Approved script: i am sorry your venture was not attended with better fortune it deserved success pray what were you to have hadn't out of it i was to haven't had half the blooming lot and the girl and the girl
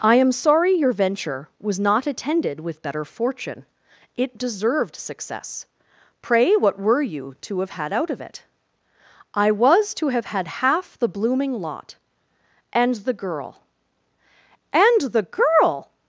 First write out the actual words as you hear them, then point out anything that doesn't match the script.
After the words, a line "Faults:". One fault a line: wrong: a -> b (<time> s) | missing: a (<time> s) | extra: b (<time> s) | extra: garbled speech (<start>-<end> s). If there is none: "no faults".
i am sorry your venture was not attended with better fortune it deserved success pray what were you to have had out of it i was to have had half the blooming lot and the girl and the girl
Faults:
wrong: hadn't -> had (7.7 s)
wrong: haven't -> have (10.1 s)